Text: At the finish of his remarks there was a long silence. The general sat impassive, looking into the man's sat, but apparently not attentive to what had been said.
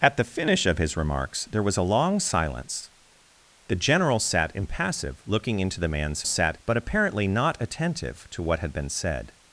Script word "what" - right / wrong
right